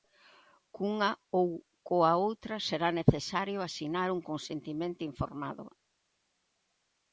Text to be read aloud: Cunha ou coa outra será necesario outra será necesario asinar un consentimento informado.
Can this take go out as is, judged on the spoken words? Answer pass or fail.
fail